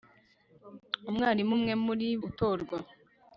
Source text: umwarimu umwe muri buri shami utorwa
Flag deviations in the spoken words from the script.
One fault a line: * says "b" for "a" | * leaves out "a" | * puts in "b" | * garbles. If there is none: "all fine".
* leaves out "buri shami"